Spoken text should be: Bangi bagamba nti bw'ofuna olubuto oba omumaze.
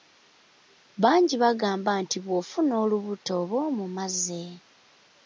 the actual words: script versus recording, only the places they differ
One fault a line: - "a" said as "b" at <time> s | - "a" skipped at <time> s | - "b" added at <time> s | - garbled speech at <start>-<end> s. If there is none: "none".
none